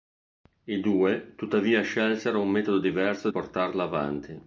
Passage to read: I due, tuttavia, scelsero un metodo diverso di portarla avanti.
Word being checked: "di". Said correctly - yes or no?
no